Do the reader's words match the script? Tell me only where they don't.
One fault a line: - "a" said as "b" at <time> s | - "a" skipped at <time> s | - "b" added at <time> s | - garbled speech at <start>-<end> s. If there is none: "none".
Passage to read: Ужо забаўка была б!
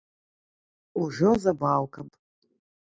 - "была" skipped at 2.0 s